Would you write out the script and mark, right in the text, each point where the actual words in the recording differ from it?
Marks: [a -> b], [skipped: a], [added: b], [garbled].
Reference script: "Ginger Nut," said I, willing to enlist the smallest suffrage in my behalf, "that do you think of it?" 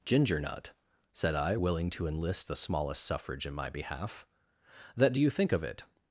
"Ginger Nut," said I, willing to enlist the smallest suffrage in my behalf, "that do you think of it?"